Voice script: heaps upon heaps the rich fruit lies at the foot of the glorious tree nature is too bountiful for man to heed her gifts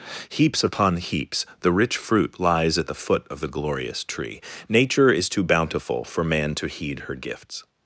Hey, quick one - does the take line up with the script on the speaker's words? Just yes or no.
yes